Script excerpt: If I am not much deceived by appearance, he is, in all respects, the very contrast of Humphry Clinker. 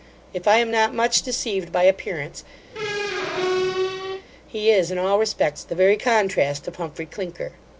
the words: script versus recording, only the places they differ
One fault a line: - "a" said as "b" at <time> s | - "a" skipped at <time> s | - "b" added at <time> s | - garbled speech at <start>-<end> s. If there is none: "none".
none